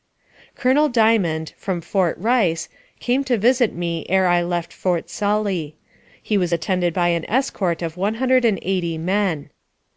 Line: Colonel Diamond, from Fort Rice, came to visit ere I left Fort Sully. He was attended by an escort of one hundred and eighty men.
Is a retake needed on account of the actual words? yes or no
yes